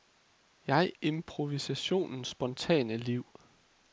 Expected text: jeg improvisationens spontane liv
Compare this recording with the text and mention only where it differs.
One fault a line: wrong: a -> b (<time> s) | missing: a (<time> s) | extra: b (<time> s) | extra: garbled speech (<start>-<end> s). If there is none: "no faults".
no faults